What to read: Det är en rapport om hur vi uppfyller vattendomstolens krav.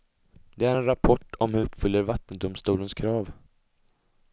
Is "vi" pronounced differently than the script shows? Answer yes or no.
yes